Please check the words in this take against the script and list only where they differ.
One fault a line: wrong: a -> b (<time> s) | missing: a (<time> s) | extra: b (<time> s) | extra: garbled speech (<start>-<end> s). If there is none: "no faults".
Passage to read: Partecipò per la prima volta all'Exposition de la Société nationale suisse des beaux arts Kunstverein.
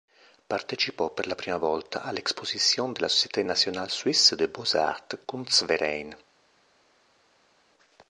no faults